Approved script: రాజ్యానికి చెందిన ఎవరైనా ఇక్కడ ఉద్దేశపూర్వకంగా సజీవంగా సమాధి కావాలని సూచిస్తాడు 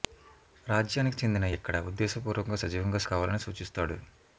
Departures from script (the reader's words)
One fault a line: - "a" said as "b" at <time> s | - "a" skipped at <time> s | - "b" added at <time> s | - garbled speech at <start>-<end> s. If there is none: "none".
- "ఎవరైనా" skipped at 1.4 s
- "సమాధి" skipped at 3.0 s